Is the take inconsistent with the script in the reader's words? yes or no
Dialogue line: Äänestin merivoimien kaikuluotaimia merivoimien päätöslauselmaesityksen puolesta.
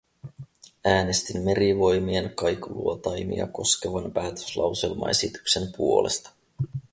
yes